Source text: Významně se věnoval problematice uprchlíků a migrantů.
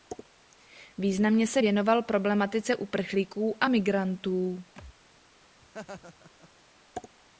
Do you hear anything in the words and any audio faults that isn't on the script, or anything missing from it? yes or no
yes